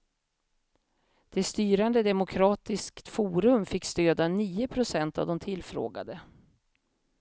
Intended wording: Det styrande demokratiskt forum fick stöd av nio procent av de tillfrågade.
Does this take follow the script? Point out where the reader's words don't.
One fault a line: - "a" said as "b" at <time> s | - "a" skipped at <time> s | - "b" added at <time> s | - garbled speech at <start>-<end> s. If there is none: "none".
none